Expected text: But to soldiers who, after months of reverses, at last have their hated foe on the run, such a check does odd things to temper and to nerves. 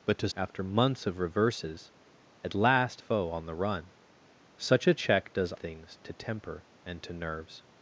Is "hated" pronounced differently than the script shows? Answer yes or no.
yes